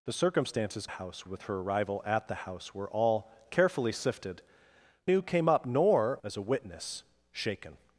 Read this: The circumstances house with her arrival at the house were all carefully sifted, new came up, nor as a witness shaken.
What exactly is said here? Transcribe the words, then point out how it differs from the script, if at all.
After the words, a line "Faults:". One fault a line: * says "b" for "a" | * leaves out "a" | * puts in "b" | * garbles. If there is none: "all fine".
The circumstances house with her arrival at the house were all carefully sifted, new came up, nor as a witness shaken.
Faults:
all fine